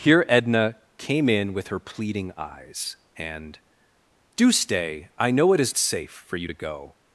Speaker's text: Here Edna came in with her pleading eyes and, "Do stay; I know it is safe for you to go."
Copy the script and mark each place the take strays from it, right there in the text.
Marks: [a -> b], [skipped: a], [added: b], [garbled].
Here Edna came in with her pleading eyes and, "Do stay; I know it is safe for you to go."